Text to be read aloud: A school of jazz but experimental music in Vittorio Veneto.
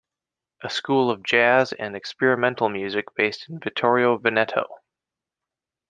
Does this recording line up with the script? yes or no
no